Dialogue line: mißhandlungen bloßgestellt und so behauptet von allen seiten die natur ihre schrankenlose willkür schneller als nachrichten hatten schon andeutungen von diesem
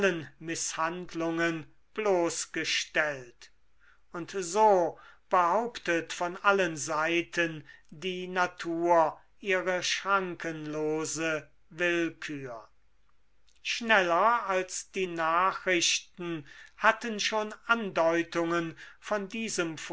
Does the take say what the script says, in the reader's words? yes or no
no